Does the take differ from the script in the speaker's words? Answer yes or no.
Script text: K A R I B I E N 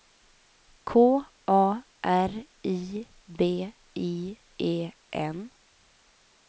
no